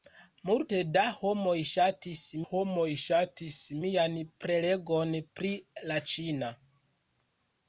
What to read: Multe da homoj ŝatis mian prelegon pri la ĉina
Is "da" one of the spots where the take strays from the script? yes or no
no